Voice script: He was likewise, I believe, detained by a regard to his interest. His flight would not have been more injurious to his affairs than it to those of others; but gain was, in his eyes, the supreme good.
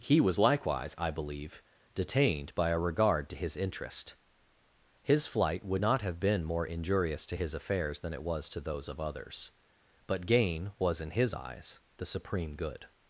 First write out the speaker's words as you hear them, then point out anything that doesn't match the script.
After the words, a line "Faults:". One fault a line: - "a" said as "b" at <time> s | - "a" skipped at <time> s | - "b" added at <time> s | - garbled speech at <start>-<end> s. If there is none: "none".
He was likewise, I believe, detained by a regard to his interest. His flight would not have been more injurious to his affairs than it was to those of others; but gain was, in his eyes, the supreme good.
Faults:
- "was" added at 8.2 s